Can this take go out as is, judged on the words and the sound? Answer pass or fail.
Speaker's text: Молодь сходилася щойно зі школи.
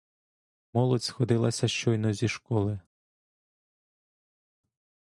pass